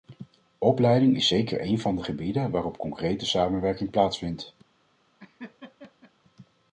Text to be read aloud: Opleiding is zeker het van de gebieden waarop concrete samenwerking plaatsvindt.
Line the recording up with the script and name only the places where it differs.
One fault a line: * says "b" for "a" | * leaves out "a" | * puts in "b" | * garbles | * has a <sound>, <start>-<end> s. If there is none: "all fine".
* says "een" for "het"
* has a laugh, 5.2-6.1 s